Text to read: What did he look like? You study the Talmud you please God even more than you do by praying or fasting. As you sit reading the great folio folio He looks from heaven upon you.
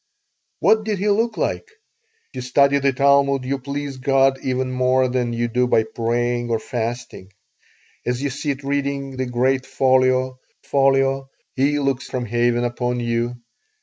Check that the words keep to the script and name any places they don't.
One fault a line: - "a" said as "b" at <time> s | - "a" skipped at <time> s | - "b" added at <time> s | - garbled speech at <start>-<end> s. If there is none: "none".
none